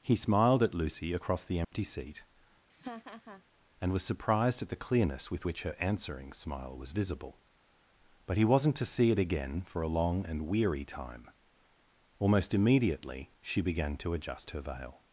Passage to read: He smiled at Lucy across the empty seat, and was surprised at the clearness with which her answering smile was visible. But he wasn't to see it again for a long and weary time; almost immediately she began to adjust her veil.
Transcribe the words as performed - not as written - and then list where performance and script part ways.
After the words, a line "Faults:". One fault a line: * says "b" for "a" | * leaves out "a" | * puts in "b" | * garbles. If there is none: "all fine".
He smiled at Lucy across the empty seat, and was surprised at the clearness with which her answering smile was visible. But he wasn't to see it again for a long and weary time; almost immediately she began to adjust her veil.
Faults:
all fine